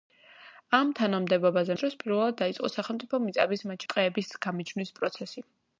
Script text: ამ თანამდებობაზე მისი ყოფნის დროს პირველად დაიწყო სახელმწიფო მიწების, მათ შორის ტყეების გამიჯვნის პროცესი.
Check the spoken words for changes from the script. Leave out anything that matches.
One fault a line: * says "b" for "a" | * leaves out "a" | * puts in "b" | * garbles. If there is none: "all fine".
* leaves out "მისი ყოფნის"
* leaves out "შორის"